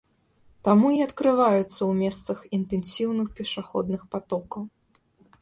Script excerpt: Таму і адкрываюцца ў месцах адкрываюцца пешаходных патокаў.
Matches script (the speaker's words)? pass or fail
fail